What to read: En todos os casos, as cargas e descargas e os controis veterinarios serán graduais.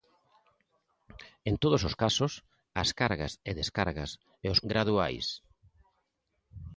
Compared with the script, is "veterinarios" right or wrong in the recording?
wrong